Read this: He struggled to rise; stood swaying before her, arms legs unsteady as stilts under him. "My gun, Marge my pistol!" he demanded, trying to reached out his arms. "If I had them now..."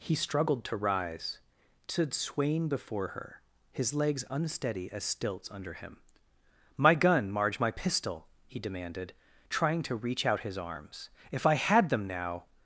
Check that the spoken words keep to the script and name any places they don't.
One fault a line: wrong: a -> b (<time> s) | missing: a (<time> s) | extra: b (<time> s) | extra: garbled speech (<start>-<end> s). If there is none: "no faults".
wrong: arms -> his (3.7 s)
wrong: reached -> reach (9.9 s)